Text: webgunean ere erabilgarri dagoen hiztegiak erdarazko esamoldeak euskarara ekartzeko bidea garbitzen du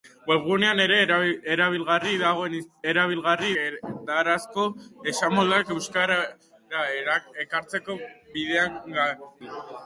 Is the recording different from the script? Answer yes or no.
yes